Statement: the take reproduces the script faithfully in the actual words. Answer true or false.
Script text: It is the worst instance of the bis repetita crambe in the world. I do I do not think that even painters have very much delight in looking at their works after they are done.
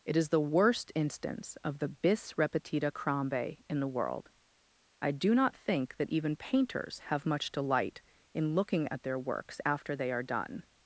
false